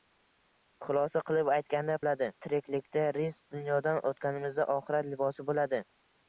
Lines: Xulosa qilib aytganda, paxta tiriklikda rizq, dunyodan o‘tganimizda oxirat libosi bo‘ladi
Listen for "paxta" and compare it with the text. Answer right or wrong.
wrong